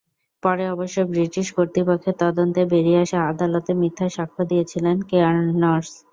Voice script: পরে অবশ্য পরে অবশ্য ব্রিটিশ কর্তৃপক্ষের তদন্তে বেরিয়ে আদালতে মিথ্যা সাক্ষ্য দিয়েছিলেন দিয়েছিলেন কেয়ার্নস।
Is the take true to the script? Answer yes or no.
no